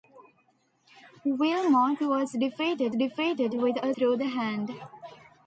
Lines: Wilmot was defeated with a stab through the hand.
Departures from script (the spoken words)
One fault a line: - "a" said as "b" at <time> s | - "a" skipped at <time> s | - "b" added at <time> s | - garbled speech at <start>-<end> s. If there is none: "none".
- "defeated" added at 2.9 s
- "stab" skipped at 3.9 s